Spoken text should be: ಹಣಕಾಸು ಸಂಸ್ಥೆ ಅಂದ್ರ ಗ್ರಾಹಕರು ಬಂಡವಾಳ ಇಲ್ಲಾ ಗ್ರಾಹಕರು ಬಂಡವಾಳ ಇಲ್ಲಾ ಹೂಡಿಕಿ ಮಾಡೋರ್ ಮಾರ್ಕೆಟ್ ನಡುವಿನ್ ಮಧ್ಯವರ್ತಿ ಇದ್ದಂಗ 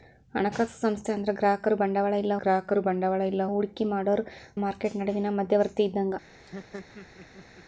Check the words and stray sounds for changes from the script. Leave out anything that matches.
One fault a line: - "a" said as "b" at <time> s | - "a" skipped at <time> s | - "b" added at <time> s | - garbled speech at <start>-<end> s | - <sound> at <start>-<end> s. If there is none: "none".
- laugh at 6.3-7.6 s